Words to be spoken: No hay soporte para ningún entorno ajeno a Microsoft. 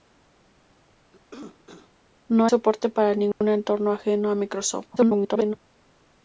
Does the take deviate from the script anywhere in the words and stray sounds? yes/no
yes